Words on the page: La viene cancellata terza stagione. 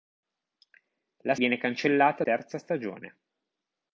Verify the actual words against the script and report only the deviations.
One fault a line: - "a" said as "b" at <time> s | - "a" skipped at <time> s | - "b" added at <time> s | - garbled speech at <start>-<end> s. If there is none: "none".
none